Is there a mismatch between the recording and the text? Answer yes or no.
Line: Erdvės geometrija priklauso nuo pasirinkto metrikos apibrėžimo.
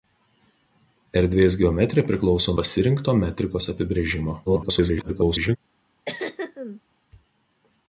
yes